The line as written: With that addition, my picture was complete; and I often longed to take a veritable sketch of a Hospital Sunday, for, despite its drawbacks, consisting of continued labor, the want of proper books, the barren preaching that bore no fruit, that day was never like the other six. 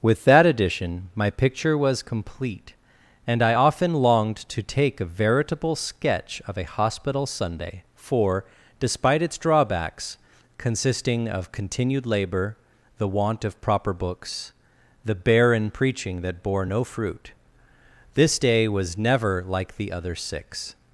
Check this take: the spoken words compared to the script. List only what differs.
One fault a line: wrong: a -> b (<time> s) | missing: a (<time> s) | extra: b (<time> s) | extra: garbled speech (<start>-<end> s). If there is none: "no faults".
wrong: that -> this (18.1 s)